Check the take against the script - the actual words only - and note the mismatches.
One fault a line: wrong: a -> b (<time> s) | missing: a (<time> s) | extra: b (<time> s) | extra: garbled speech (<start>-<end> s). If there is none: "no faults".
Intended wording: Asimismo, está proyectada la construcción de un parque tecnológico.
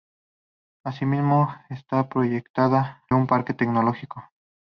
missing: la construcción de (3.0 s)